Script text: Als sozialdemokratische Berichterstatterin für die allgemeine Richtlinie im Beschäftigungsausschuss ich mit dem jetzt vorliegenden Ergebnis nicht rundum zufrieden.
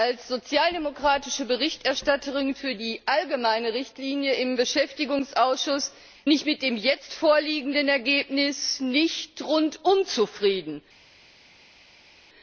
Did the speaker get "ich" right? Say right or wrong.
right